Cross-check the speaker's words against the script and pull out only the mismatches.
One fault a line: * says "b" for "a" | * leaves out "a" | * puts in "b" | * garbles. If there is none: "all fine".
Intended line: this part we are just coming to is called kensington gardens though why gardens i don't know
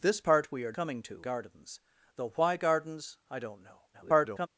* leaves out "just"
* leaves out "is called kensington"
* garbles